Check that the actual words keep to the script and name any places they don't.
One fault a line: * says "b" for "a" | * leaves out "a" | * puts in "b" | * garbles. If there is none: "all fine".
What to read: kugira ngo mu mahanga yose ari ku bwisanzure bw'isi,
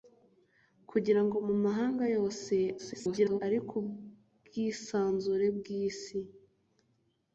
* garbles